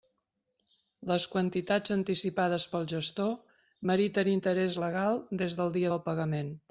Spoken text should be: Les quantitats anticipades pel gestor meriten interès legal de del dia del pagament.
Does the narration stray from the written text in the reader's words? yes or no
yes